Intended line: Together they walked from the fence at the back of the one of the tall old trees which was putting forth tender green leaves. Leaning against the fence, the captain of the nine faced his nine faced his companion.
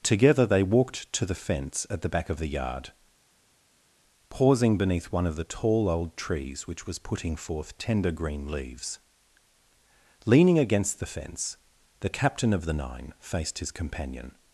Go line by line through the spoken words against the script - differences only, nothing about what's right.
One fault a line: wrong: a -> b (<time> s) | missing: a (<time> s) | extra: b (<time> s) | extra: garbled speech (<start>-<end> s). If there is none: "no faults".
wrong: from -> to (1.1 s)
extra: yard pausing beneath (2.5 s)
missing: nine faced his (13.7 s)